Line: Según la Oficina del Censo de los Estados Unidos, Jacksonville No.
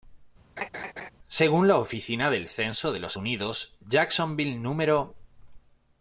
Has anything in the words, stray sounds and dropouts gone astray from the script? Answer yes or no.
yes